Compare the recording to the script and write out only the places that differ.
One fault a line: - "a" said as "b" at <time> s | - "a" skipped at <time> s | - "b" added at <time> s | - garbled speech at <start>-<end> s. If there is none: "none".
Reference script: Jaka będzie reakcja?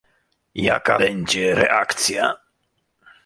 none